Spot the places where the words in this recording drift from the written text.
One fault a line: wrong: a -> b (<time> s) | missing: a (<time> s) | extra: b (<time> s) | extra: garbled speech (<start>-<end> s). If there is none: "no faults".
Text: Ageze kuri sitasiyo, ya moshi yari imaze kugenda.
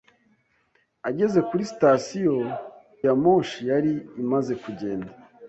no faults